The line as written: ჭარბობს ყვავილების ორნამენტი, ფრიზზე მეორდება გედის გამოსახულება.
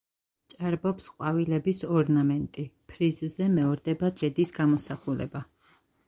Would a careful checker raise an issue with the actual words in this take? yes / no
no